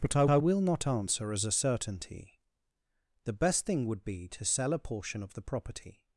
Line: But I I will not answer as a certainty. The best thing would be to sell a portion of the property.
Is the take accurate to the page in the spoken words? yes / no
yes